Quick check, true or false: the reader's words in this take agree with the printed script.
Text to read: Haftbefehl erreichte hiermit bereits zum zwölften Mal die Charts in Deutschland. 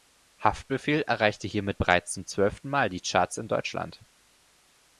true